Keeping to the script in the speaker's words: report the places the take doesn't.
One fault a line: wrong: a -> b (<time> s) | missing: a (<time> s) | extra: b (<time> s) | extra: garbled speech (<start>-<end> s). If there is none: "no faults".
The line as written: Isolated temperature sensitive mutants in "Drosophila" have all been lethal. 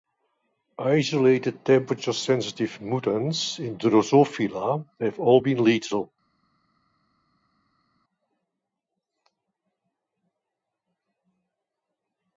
no faults